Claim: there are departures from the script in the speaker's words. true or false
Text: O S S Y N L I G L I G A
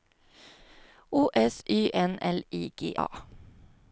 true